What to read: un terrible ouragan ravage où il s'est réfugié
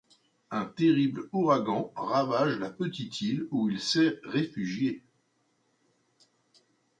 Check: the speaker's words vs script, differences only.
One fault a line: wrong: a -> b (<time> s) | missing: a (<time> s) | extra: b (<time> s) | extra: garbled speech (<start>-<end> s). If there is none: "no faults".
extra: la petite île (2.6 s)